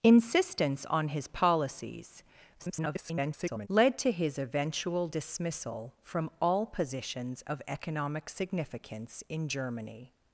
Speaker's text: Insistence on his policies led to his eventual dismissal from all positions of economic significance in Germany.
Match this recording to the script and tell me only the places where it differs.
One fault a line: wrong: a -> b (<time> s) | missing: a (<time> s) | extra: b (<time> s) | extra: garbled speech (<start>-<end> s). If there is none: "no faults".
extra: garbled speech (2.6-3.7 s)